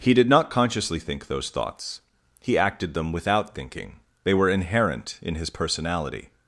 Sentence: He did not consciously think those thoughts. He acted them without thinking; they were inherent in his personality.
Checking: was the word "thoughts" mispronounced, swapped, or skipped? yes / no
no